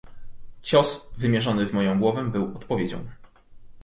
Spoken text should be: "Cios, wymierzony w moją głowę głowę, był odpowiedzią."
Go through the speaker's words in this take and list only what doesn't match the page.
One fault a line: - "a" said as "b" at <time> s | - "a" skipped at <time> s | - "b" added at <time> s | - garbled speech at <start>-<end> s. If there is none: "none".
- "głowę" skipped at 2.3 s